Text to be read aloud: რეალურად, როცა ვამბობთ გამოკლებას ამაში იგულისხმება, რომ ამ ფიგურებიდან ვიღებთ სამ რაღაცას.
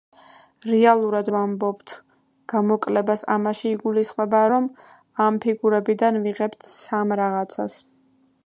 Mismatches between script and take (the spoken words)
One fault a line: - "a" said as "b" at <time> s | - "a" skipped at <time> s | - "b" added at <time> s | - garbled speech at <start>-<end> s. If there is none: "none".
- "როცა" skipped at 1.3 s